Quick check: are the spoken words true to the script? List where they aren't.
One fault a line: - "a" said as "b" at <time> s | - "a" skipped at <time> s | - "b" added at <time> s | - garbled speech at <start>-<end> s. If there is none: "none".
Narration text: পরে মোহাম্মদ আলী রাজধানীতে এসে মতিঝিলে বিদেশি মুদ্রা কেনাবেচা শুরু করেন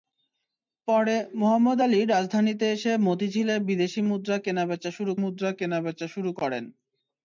- "মুদ্রা কেনাবেচা শুরু" added at 5.2 s